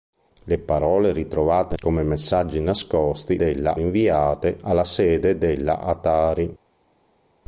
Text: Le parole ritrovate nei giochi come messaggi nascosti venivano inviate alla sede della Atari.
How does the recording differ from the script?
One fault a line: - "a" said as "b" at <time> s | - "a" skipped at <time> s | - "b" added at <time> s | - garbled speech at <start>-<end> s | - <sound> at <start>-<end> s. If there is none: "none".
- "nei giochi" skipped at 1.8 s
- "venivano" said as "della" at 3.3 s